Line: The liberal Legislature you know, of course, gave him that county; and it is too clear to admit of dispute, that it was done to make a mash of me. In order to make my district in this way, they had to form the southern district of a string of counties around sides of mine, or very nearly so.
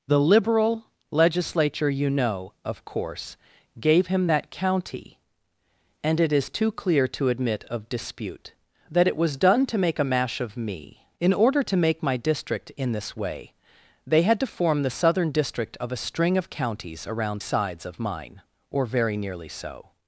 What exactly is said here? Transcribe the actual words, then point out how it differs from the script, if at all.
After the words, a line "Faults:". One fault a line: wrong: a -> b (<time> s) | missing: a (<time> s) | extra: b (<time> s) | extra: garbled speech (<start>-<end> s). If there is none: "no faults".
The liberal Legislature you know, of course, gave him that county; and it is too clear to admit of dispute, that it was done to make a mash of me. In order to make my district in this way, they had to form the southern district of a string of counties around sides of mine, or very nearly so.
Faults:
no faults